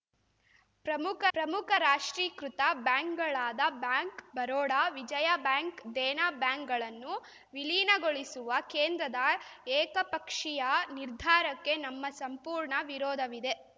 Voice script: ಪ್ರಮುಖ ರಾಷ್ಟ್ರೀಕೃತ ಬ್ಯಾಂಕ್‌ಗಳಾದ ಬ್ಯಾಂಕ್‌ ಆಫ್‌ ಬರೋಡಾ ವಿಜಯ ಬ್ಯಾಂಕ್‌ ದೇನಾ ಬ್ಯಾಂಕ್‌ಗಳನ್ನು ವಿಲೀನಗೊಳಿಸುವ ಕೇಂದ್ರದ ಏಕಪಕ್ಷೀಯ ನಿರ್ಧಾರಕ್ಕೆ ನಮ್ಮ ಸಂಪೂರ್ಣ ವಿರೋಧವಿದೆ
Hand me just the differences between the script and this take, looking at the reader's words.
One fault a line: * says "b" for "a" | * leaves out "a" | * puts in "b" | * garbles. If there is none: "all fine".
* puts in "ಪ್ರಮುಖ"
* leaves out "ಆಫ್"